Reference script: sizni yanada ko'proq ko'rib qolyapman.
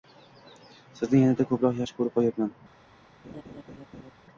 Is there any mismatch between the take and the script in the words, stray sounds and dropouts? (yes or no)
yes